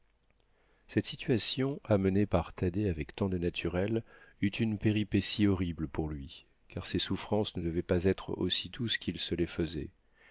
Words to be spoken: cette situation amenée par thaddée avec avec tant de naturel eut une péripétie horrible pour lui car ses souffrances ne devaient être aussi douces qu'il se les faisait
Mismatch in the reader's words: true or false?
true